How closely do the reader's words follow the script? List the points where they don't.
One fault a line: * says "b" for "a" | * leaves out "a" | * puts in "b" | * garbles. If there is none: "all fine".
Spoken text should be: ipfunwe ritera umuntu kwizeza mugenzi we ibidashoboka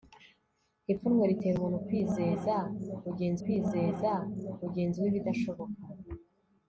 * puts in "kwizeza mugenzi"